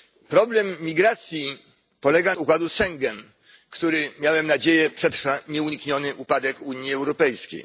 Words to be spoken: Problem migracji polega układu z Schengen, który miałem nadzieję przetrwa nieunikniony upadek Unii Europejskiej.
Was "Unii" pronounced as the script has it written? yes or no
yes